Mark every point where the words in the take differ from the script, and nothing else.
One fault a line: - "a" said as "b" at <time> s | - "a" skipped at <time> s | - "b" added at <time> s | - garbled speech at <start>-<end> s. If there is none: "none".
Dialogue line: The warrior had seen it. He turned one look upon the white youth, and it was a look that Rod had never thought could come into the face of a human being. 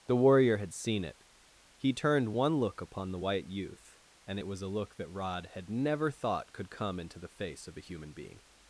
none